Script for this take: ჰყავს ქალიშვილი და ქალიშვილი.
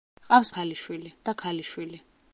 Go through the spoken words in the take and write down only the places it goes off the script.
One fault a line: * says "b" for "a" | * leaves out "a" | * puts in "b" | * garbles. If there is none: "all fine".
all fine